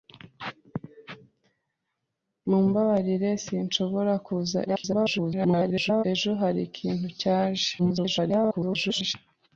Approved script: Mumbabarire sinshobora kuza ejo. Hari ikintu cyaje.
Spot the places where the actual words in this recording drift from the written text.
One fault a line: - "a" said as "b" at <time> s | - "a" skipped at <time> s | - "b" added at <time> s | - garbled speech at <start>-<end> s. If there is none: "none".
- garbled speech at 4.7-6.0 s
- garbled speech at 7.8-9.1 s